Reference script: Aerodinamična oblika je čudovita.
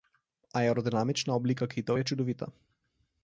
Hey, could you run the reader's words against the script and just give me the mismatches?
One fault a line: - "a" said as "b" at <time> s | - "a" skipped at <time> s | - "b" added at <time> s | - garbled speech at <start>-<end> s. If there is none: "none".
- "kitov" added at 1.7 s